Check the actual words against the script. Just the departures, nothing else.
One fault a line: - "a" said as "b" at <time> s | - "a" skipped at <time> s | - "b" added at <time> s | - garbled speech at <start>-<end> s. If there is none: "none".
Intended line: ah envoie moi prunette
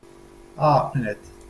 - "envoie moi" skipped at 0.9 s